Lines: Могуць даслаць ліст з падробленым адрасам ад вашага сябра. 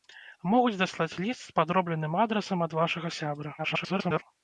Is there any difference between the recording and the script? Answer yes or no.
yes